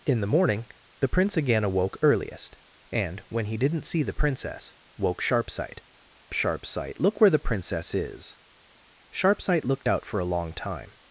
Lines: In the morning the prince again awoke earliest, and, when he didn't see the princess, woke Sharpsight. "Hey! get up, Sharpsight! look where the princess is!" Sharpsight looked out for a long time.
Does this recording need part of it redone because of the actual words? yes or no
yes